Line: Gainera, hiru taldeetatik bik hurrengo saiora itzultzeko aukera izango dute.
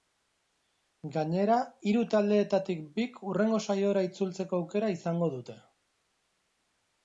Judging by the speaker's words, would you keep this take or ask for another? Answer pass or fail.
pass